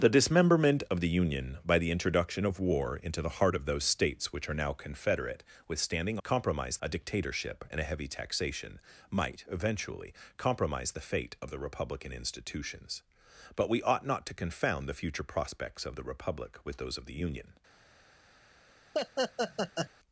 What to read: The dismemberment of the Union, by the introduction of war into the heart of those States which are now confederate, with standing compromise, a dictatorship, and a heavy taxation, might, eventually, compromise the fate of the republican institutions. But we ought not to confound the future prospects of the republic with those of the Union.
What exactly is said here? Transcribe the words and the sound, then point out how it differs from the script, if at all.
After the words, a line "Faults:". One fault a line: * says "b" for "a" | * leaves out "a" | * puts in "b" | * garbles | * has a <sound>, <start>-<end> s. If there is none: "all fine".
The dismemberment of the Union, by the introduction of war into the heart of those States which are now confederate, with standing compromise, a dictatorship, and a heavy taxation, might, eventually, compromise the fate of the republican institutions. But we ought not to confound the future prospects of the republic with those of the Union.
Faults:
* has a laugh, 18.9-19.9 s